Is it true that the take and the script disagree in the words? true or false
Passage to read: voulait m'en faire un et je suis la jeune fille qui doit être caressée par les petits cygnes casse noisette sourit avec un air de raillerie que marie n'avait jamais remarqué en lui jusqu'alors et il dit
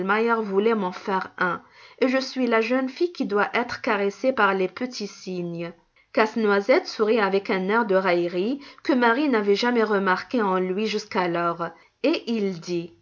false